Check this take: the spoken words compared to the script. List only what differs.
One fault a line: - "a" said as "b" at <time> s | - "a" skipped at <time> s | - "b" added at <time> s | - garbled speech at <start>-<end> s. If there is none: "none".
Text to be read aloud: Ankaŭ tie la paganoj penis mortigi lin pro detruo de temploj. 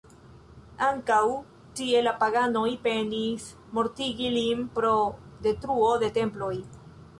none